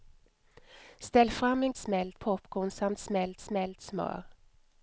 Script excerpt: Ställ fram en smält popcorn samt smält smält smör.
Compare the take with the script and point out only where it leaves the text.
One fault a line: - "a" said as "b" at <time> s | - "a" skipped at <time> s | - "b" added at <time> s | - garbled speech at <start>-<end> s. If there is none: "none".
none